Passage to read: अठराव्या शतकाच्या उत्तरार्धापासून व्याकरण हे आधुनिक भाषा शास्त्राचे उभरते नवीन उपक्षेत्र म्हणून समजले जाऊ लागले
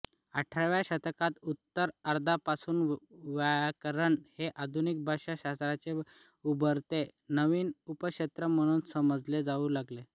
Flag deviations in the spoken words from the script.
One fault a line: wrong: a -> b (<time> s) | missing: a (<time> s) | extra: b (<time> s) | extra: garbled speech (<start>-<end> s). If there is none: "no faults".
no faults